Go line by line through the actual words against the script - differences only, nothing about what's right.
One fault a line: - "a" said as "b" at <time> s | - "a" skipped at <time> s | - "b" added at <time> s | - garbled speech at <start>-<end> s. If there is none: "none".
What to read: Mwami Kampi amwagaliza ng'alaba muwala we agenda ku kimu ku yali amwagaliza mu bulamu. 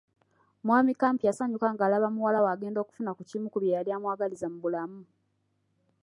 - "amwagaliza" said as "yasanyuka" at 1.3 s
- "okufuna" added at 2.8 s
- "bye" added at 3.6 s